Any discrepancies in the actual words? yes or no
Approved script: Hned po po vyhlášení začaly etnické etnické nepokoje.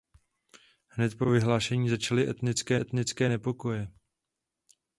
no